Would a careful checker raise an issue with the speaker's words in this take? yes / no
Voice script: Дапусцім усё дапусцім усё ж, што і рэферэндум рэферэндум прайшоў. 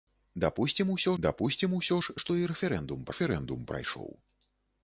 no